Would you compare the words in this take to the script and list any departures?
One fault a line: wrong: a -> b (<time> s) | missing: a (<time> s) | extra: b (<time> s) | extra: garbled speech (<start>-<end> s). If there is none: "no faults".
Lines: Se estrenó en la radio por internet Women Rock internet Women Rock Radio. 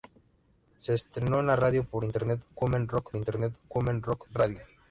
no faults